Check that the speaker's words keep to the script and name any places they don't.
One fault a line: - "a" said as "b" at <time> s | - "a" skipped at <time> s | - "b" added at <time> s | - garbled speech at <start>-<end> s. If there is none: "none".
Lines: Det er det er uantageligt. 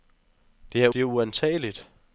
none